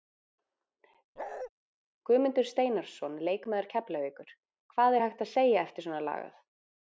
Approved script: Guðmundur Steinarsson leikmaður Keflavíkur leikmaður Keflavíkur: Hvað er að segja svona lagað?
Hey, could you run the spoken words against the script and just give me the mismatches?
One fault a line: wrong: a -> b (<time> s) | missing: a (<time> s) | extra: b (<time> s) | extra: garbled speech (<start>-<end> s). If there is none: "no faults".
missing: leikmaður Keflavíkur (4.3 s)
extra: hægt (5.1 s)
extra: eftir (5.7 s)